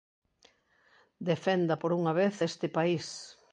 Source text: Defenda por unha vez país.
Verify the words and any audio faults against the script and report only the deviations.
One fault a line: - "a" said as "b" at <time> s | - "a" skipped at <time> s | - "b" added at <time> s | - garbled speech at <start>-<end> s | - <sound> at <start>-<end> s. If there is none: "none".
- "este" added at 2.4 s